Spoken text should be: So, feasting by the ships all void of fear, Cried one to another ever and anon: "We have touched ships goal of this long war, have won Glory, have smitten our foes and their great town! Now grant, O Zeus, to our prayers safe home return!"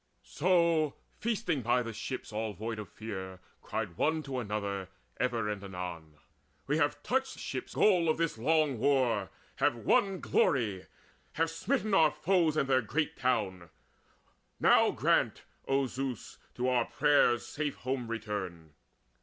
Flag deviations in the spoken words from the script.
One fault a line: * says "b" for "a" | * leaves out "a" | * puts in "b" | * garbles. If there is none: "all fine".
all fine